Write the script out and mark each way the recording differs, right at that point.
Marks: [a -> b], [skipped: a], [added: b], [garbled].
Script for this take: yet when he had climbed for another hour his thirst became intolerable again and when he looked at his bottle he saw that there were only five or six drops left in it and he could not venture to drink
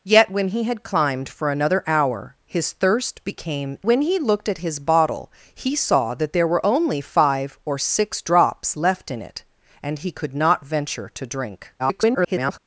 yet when he had climbed for another hour his thirst became [skipped: intolerable again and] when he looked at his bottle he saw that there were only five or six drops left in it and he could not venture to drink [garbled]